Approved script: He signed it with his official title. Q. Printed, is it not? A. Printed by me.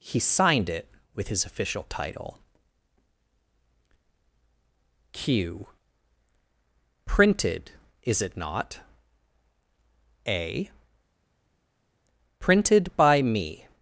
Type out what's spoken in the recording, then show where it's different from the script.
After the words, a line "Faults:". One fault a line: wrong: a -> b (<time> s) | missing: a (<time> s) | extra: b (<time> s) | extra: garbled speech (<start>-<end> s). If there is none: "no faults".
He signed it with his official title. Q. Printed, is it not? A. Printed by me.
Faults:
no faults